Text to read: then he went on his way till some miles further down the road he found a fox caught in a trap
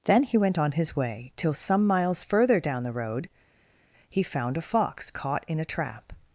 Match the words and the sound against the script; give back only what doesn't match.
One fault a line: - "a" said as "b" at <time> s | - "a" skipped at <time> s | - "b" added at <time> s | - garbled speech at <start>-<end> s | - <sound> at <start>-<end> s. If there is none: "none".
none